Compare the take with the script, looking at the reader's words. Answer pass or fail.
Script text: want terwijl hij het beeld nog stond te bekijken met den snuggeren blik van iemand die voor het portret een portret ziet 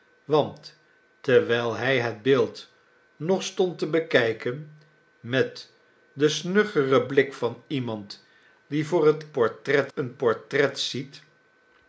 pass